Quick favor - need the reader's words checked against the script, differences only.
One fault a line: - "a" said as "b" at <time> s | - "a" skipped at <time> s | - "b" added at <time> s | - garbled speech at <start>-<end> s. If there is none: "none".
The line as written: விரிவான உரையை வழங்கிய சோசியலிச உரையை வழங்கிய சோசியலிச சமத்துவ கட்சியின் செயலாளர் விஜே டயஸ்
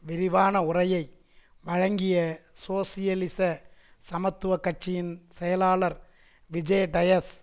- "உரையை வழங்கிய சோசியலிச" skipped at 3.4 s